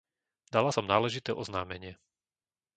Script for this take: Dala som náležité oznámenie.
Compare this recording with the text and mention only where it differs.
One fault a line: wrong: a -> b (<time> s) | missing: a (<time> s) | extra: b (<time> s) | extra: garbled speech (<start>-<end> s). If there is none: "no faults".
no faults